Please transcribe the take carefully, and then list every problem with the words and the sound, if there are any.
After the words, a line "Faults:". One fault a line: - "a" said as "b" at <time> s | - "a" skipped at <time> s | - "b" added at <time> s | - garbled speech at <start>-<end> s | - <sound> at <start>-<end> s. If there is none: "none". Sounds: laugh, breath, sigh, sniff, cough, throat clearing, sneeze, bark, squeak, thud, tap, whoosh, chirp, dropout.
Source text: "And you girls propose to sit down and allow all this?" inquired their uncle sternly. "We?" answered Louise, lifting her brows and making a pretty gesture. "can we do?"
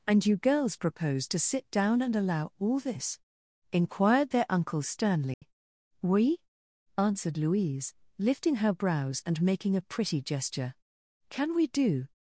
"And you girls propose to sit down and allow all this?" inquired their uncle sternly. "We?" answered Louise, lifting her brows and making a pretty gesture. "can we do?"
Faults:
- dropout at 5.3-5.4 s